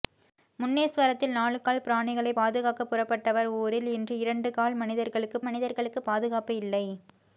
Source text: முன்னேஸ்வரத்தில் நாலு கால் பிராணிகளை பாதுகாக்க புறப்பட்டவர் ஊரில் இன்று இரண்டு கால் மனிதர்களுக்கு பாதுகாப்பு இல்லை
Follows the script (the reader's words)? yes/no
no